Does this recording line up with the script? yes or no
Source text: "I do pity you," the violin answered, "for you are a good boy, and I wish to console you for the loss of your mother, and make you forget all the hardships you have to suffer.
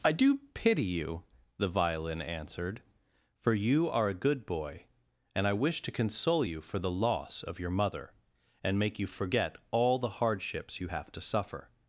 yes